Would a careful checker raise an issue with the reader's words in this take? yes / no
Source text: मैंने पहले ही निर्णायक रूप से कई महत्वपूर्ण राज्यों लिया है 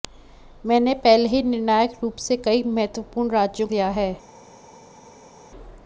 no